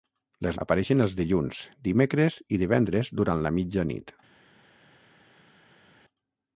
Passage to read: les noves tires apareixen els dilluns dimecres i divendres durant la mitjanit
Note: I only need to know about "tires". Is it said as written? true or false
false